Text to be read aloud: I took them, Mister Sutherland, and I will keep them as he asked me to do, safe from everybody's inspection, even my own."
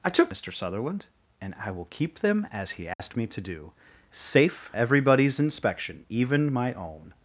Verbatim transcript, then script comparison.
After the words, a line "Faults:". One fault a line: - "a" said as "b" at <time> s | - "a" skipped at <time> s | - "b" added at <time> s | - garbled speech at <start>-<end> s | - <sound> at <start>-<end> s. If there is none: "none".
I took Mister Sutherland, and I will keep them as he asked me to do, safe everybody's inspection, even my own."
Faults:
- "them" skipped at 0.3 s
- dropout at 2.9-3.0 s
- "from" skipped at 4.7 s